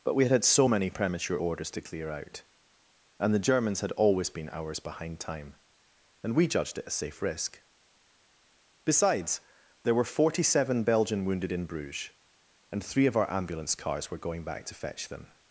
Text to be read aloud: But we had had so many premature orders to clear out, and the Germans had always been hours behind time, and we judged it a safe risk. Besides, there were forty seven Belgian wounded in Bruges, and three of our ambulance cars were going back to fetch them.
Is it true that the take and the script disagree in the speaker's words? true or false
false